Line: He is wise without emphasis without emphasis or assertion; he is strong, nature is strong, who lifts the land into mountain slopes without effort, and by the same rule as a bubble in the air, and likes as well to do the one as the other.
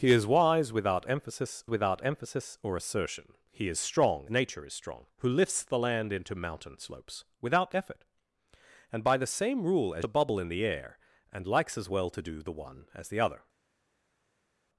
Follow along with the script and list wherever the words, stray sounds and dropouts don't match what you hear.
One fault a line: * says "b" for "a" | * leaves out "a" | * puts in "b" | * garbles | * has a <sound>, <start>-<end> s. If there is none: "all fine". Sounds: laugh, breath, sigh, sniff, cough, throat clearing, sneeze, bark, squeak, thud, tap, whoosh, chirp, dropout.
all fine